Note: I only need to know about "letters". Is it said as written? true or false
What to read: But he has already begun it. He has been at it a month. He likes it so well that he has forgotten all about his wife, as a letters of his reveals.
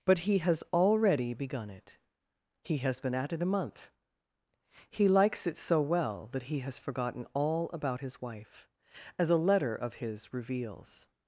false